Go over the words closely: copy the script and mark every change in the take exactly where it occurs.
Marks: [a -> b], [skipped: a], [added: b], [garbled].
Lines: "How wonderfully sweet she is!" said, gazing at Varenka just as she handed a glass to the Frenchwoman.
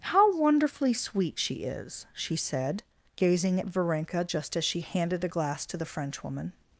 "How wonderfully sweet she is!" [added: she] said, gazing at Varenka just as she handed a glass to the Frenchwoman.